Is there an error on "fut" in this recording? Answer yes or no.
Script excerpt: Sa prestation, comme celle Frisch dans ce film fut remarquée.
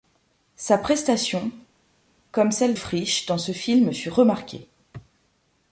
no